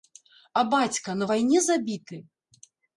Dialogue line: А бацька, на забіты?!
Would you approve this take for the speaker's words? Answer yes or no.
no